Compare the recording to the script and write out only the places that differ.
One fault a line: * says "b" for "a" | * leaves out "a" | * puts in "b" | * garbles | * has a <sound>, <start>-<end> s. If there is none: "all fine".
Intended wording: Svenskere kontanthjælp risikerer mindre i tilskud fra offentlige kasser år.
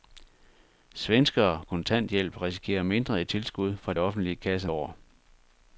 all fine